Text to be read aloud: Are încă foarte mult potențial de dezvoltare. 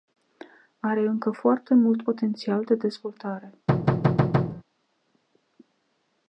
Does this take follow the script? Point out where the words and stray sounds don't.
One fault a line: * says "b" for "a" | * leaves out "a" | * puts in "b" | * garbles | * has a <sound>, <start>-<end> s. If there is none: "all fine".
* has a thud, 3.7-4.6 s